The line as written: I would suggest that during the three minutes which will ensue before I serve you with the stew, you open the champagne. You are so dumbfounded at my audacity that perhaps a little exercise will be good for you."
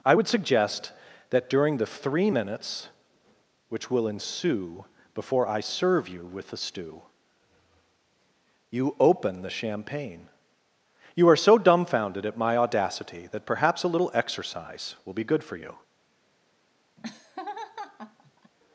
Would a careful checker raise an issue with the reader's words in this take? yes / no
no